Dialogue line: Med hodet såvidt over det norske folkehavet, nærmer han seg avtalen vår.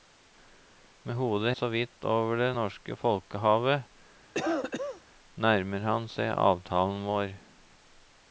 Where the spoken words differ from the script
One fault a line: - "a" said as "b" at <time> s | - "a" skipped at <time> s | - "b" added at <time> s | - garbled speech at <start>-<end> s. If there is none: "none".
none